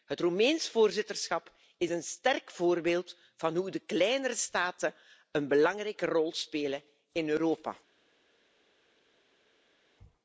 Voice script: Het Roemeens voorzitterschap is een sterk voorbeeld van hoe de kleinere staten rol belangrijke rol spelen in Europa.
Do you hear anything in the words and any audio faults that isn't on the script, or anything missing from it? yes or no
yes